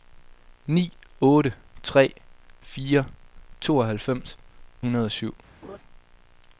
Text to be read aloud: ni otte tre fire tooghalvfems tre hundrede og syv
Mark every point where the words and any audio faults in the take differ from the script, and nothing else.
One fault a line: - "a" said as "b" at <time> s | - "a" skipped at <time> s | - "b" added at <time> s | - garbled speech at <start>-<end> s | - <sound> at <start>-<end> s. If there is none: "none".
- "tre" skipped at 4.4 s
- laugh at 5.6-5.8 s